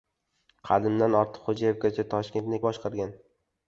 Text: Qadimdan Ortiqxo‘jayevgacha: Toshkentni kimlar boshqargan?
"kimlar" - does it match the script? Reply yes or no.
no